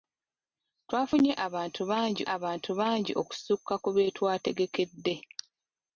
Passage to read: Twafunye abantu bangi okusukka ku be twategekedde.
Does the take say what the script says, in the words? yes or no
no